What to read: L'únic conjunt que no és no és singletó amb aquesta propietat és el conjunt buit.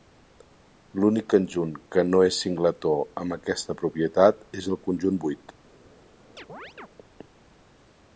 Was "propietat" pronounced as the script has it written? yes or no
yes